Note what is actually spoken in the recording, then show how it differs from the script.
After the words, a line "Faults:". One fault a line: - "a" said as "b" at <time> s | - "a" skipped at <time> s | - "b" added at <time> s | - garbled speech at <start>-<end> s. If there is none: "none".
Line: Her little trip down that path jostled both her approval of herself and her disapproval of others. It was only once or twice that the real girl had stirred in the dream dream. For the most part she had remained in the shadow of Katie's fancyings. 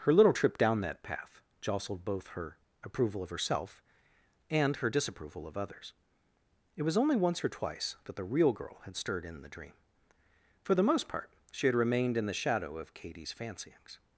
Her little trip down that path jostled both her approval of herself and her disapproval of others. It was only once or twice that the real girl had stirred in the dream. For the most part she had remained in the shadow of Katie's fancyings.
Faults:
- "dream" skipped at 9.7 s